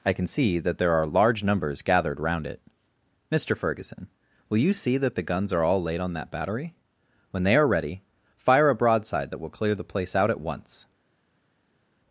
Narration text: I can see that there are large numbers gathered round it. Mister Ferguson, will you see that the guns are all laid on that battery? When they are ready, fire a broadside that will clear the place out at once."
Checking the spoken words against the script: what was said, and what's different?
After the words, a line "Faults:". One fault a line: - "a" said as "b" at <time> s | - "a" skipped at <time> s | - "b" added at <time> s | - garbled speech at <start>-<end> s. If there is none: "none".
I can see that there are large numbers gathered round it. Mister Ferguson, will you see that the guns are all laid on that battery? When they are ready, fire a broadside that will clear the place out at once."
Faults:
none